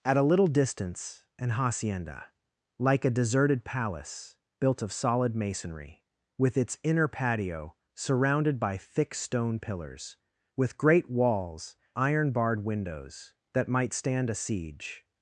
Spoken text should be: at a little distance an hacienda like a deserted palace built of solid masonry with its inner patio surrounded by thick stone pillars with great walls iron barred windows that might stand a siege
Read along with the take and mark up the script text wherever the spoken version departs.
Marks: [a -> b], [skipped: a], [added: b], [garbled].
at a little distance an hacienda like a deserted palace built of solid masonry with its inner patio surrounded by thick stone pillars with great walls iron barred windows that might stand a siege